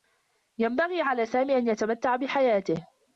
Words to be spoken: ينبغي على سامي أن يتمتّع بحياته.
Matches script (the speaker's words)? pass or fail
pass